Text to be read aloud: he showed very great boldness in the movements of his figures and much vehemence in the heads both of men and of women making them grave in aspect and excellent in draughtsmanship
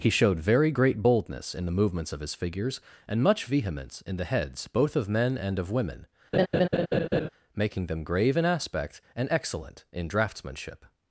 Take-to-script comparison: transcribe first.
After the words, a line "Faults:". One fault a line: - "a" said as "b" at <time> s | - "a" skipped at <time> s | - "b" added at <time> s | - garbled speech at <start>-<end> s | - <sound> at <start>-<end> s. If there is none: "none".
he showed very great boldness in the movements of his figures and much vehemence in the heads both of men and of women making them grave in aspect and excellent in draughtsmanship
Faults:
- laugh at 6.3-7.3 s